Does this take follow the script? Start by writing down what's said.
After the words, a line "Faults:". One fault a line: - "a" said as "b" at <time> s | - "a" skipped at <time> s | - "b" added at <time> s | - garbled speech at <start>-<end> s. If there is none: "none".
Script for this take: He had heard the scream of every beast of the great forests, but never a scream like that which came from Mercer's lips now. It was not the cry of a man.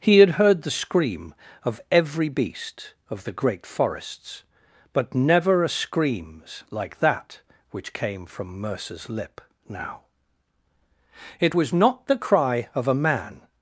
He had heard the scream of every beast of the great forests, but never a screams like that which came from Mercer's lip now. It was not the cry of a man.
Faults:
- "scream" said as "screams" at 5.7 s
- "lips" said as "lip" at 9.1 s